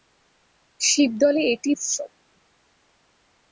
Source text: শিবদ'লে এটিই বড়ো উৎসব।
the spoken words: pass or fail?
fail